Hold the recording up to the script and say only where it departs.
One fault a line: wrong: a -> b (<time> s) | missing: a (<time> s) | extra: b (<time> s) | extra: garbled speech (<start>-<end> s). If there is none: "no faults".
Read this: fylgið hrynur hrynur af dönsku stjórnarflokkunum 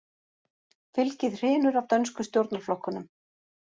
missing: hrynur (1.8 s)